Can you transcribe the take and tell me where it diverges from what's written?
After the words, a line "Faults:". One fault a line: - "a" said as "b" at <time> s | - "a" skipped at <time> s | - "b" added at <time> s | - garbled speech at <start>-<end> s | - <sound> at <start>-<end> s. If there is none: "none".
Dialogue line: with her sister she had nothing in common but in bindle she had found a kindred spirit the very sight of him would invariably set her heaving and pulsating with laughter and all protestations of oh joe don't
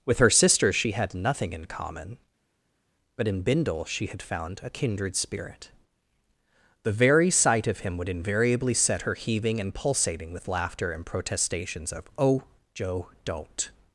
with her sister she had nothing in common but in bindle she had found a kindred spirit the very sight of him would invariably set her heaving and pulsating with laughter and protestations of oh joe don't
Faults:
- "all" skipped at 11.1 s